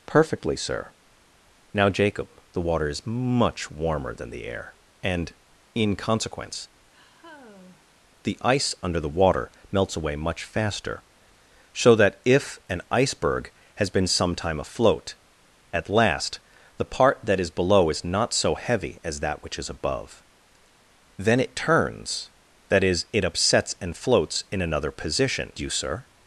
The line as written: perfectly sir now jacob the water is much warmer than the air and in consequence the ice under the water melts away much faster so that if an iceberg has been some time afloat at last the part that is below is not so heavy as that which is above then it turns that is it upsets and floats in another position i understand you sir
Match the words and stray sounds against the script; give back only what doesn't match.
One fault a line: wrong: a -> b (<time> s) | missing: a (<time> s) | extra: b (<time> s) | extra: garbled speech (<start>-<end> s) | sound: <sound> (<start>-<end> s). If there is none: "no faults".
sound: sigh (6.9-7.9 s)
missing: i understand (25.5 s)